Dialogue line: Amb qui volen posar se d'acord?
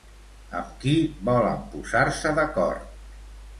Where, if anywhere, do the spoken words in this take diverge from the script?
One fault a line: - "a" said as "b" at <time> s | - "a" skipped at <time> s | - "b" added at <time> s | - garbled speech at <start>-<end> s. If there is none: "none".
none